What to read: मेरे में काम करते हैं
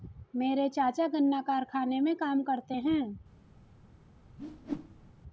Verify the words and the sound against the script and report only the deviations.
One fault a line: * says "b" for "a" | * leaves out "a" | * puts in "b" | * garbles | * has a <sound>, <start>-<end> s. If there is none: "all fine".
* puts in "चाचा गन्ना कारखाने"
* has a whoosh, 4.4-5.1 s